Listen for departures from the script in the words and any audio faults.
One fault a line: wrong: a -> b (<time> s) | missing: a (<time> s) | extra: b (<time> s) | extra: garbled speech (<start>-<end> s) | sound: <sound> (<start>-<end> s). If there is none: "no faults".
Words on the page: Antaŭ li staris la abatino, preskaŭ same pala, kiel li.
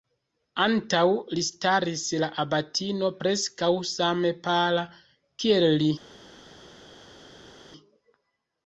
no faults